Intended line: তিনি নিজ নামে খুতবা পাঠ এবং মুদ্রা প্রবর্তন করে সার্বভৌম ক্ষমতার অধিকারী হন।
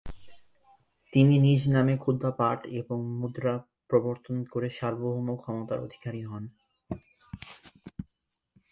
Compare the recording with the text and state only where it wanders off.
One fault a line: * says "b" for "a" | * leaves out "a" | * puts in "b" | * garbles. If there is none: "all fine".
all fine